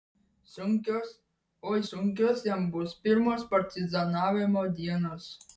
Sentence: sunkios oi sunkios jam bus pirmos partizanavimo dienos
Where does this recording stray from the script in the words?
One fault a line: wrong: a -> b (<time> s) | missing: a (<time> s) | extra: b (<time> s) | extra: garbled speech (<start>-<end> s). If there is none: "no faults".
no faults